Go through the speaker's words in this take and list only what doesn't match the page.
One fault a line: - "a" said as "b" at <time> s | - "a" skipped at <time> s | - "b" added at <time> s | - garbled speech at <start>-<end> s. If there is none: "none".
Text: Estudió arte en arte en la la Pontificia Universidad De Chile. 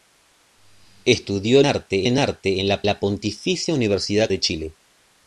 none